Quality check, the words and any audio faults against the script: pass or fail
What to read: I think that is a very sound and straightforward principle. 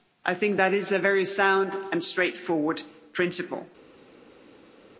pass